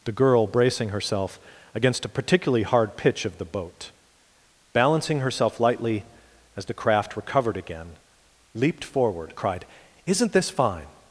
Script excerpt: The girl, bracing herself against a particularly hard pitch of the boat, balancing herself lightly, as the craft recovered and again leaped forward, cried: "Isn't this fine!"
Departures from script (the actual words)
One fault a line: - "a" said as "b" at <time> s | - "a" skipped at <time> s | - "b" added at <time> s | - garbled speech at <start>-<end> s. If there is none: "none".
- "and" skipped at 7.6 s